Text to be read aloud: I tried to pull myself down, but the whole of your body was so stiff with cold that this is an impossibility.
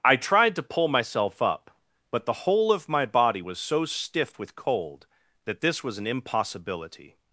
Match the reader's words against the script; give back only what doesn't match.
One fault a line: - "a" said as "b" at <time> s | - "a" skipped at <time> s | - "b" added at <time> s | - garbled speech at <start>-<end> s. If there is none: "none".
- "down" said as "up" at 1.4 s
- "your" said as "my" at 2.9 s
- "is" said as "was" at 5.8 s